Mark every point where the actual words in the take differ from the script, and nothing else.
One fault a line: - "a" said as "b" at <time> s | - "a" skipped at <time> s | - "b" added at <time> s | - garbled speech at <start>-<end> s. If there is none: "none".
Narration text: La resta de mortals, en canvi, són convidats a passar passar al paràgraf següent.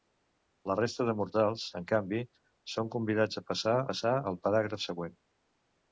none